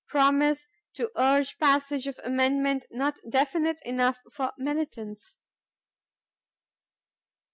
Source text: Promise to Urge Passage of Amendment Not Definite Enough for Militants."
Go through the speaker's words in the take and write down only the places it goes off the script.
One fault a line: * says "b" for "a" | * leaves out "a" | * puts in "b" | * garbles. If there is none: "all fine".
all fine